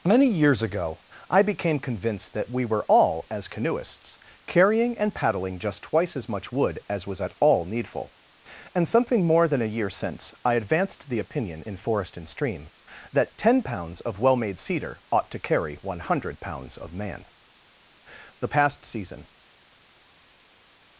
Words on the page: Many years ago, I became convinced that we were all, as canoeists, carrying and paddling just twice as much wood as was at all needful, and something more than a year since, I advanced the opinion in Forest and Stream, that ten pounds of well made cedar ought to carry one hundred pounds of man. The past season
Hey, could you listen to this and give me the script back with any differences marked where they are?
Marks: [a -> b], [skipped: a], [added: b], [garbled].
Many years ago, I became convinced that we were all, as canoeists, carrying and paddling just twice as much wood as was at all needful, and something more than a year since, I advanced the opinion in Forest and Stream, that ten pounds of well made cedar ought to carry one hundred pounds of man. The past season